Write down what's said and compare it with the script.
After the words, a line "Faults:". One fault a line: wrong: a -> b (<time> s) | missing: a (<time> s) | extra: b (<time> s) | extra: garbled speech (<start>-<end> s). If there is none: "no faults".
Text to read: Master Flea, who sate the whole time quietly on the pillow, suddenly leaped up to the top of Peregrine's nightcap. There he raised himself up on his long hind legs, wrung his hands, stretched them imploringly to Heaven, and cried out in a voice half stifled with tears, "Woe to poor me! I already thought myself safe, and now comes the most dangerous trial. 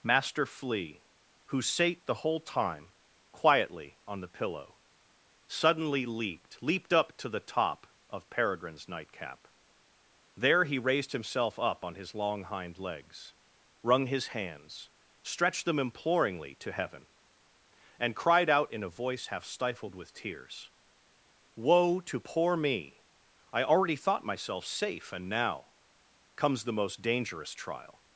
Master Flea, who sate the whole time quietly on the pillow, suddenly leaped leaped up to the top of Peregrine's nightcap. There he raised himself up on his long hind legs, wrung his hands, stretched them imploringly to Heaven, and cried out in a voice half stifled with tears, "Woe to poor me! I already thought myself safe, and now comes the most dangerous trial.
Faults:
extra: leaped (6.6 s)